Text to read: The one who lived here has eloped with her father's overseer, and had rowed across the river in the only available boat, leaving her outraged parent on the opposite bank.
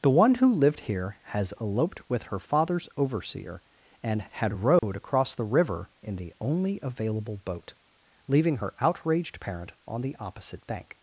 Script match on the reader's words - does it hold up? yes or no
yes